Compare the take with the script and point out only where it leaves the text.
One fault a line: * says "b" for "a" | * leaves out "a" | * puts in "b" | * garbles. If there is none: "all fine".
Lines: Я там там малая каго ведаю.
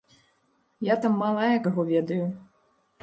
* leaves out "там"